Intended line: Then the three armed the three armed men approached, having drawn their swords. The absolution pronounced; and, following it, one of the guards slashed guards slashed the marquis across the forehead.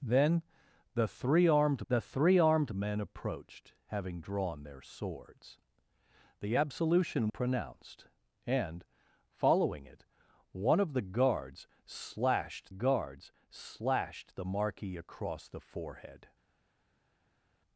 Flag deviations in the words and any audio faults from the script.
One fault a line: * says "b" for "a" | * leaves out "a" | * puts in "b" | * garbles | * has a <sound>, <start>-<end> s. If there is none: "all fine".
all fine